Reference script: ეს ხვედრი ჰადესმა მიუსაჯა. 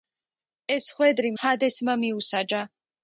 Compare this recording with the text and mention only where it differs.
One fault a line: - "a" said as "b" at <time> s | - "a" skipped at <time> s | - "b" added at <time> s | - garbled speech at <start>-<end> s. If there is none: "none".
none